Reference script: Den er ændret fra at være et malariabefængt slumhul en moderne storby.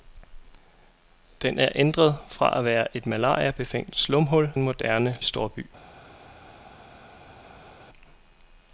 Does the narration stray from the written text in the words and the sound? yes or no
no